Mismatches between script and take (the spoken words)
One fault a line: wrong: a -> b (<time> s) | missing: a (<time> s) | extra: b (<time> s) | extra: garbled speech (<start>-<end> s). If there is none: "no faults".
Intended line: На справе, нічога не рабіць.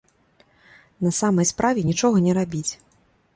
extra: самай (1.2 s)